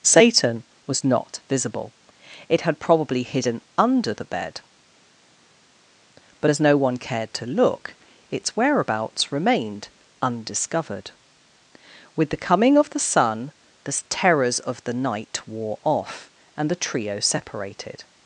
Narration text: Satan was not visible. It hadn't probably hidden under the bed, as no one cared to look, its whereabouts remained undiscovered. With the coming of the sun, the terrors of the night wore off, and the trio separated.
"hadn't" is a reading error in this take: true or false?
true